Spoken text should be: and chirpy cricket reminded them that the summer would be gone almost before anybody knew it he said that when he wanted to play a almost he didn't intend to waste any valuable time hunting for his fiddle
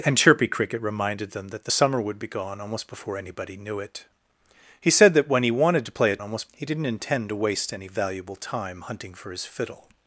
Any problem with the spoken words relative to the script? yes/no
no